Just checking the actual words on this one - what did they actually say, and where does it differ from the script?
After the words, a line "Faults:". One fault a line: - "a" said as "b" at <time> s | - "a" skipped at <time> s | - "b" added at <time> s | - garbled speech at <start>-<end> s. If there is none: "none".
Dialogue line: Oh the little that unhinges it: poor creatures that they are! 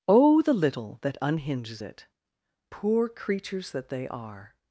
Oh the little that unhinges it: poor creatures that they are!
Faults:
none